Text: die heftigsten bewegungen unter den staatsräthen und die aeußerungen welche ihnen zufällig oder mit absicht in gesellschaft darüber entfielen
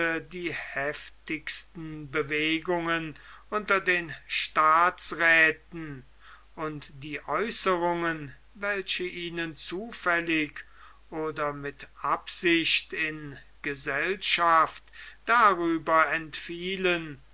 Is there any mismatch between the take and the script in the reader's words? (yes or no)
no